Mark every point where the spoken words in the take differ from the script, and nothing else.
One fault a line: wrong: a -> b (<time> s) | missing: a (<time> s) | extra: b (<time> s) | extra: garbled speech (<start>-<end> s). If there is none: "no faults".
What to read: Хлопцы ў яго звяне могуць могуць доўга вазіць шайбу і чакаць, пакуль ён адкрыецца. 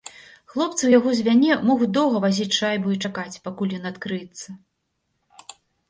missing: могуць (1.9 s)